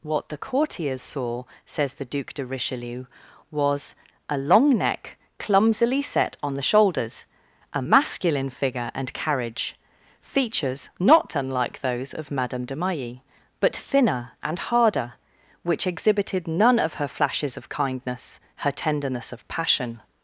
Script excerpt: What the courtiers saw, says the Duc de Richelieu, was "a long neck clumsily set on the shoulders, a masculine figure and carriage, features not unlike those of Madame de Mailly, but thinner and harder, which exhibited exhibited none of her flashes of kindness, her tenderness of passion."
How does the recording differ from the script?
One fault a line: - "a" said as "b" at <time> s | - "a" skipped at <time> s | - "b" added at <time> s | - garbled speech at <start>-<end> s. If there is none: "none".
- "exhibited" skipped at 16.5 s